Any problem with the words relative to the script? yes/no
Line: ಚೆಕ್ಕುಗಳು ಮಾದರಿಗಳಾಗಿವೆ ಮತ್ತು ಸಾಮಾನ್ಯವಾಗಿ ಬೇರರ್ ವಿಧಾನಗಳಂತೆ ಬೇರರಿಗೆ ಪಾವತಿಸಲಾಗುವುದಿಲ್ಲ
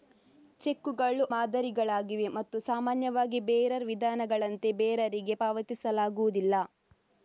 no